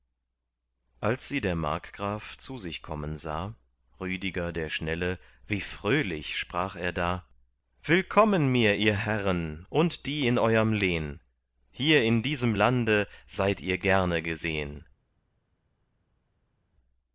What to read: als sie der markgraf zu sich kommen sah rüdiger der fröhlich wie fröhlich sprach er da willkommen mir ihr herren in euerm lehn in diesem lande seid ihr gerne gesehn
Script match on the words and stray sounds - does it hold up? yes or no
no